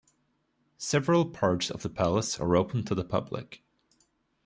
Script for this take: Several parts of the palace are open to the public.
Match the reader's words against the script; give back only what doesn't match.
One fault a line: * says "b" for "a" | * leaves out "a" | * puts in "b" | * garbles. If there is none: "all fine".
all fine